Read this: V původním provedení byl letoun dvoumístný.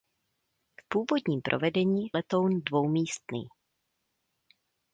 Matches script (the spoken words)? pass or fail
fail